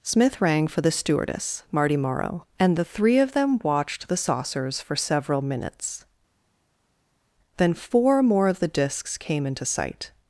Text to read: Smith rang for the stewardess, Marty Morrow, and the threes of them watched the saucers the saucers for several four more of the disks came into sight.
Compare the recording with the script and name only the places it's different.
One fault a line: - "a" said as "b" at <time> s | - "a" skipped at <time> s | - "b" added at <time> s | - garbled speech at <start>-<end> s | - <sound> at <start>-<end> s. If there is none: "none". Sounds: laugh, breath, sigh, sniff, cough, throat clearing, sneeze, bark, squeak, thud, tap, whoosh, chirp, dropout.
- "threes" said as "three" at 2.8 s
- "the saucers for several" said as "for several minutes Then" at 4.8 s